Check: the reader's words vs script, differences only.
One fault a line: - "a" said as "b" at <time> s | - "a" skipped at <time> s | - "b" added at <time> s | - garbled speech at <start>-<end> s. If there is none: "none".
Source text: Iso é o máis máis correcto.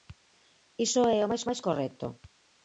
none